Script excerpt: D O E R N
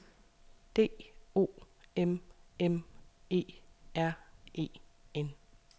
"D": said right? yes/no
yes